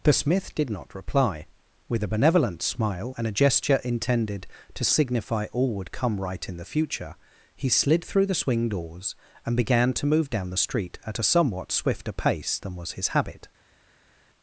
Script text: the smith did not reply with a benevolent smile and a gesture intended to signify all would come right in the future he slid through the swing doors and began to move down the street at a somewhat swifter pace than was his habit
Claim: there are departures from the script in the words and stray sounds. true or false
false